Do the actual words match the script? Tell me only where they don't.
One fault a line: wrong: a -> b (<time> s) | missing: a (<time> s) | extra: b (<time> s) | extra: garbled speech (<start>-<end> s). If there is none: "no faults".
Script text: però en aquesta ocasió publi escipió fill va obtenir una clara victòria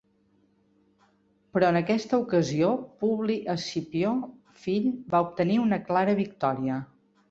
no faults